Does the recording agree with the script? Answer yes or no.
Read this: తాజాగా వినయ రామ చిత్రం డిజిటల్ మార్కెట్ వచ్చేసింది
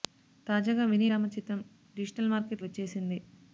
yes